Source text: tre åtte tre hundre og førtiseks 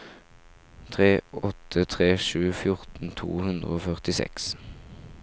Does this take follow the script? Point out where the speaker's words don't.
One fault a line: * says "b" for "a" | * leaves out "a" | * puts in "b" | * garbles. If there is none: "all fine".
* puts in "sju fjorten to"